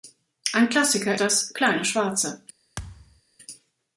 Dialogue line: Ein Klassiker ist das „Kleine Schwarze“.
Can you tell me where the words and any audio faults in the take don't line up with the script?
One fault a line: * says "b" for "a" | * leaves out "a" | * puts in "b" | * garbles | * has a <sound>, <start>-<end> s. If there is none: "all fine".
* leaves out "ist"
* has a thud, 2.8-3.2 s